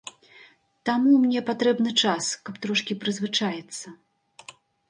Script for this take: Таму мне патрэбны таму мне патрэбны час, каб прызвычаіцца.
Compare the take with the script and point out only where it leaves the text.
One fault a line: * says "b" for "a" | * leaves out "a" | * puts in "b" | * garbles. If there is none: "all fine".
* leaves out "таму мне патрэбны"
* puts in "трошкі"